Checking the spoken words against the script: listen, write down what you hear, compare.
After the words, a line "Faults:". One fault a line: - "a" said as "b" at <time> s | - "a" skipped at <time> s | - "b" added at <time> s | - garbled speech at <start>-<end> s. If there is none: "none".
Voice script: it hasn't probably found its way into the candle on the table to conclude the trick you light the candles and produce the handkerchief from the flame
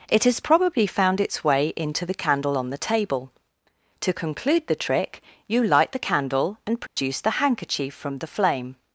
it has probably found its way into the candle on the table to conclude the trick you light the candle and produce the handkerchief from the flame
Faults:
- "hasn't" said as "has" at 0.2 s
- "candles" said as "candle" at 6.1 s